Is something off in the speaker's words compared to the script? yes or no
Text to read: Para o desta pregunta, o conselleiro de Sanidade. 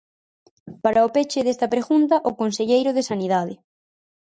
yes